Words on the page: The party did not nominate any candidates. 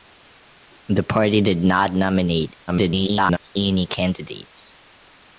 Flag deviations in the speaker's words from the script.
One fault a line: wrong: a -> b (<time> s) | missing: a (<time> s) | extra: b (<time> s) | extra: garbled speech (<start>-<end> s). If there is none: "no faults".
extra: garbled speech (2.7-3.5 s)